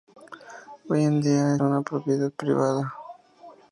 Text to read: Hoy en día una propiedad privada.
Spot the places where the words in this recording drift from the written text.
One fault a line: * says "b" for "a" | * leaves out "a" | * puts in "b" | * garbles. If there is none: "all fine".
all fine